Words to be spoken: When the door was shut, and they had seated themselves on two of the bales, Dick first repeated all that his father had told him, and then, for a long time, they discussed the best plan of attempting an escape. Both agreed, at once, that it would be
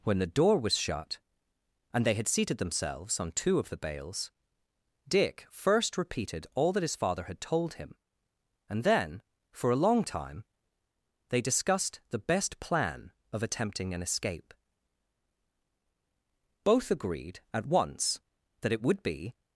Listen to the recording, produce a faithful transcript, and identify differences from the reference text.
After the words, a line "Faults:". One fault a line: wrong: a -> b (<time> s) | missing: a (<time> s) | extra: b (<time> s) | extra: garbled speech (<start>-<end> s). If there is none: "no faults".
When the door was shut, and they had seated themselves on two of the bales, Dick first repeated all that his father had told him, and then, for a long time, they discussed the best plan of attempting an escape. Both agreed, at once, that it would be
Faults:
no faults